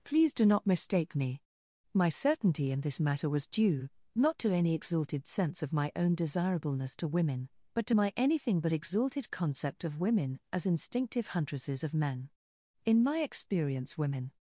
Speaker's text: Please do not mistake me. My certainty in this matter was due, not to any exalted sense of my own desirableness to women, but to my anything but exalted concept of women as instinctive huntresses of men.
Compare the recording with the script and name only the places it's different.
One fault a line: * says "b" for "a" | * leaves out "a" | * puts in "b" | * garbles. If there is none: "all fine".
* puts in "In my experience women"